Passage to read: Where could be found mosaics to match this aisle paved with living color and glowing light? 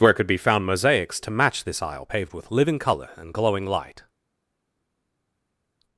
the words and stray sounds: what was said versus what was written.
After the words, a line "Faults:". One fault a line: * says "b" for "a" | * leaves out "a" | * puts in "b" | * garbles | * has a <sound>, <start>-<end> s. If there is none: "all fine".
Where could be found mosaics to match this aisle paved with living color and glowing light?
Faults:
all fine